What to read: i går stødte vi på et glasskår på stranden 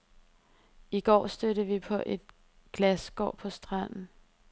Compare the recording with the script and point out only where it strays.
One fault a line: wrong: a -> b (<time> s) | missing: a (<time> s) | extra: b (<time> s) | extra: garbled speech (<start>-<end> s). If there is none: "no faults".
no faults